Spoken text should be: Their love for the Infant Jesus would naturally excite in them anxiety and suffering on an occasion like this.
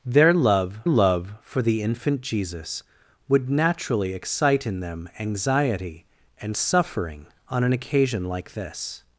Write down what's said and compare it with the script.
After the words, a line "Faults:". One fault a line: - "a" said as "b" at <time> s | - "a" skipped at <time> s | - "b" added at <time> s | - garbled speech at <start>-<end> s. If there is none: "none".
Their love love for the Infant Jesus would naturally excite in them anxiety and suffering on an occasion like this.
Faults:
- "love" added at 0.9 s